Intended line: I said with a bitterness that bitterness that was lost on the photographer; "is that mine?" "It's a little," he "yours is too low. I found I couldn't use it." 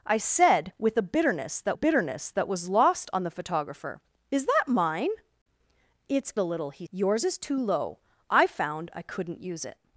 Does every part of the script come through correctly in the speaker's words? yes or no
yes